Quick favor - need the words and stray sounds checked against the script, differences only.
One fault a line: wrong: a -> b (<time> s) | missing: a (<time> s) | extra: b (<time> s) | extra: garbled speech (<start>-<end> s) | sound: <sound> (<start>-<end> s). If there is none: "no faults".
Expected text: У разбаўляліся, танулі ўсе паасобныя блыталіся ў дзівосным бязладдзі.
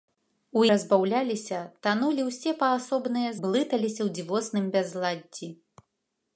no faults